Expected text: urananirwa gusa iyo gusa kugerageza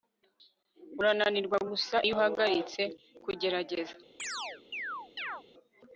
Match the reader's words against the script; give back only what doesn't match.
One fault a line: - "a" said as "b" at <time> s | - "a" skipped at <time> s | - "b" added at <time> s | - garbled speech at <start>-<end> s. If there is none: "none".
- "gusa" said as "uhagaritse" at 2.2 s